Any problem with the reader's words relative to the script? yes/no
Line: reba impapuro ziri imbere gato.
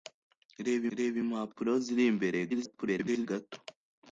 yes